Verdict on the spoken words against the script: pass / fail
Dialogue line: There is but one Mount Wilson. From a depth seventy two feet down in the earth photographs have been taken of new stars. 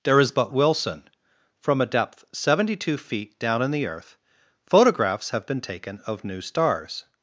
fail